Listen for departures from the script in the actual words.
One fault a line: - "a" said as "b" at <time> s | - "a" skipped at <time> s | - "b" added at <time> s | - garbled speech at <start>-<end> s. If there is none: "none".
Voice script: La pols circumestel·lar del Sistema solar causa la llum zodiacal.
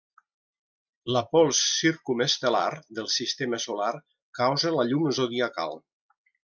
none